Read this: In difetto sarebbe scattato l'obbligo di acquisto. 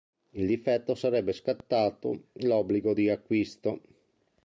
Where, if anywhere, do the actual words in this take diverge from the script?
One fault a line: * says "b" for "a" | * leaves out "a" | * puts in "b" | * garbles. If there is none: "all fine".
all fine